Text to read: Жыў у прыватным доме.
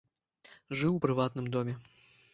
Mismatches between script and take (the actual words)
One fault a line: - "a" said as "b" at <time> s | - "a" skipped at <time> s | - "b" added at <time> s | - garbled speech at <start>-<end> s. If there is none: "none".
none